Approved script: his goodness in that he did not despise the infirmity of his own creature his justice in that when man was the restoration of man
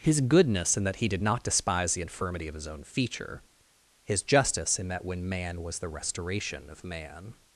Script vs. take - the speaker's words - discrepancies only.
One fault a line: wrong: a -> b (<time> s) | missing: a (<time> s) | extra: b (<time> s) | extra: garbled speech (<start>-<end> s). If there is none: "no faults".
wrong: creature -> feature (2.8 s)